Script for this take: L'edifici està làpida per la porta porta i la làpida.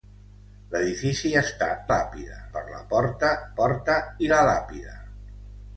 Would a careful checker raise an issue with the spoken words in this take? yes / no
no